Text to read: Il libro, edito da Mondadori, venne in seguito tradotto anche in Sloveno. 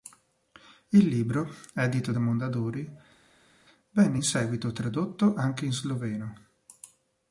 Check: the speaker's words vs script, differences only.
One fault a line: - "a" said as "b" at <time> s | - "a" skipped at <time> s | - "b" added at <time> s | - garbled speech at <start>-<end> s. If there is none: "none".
none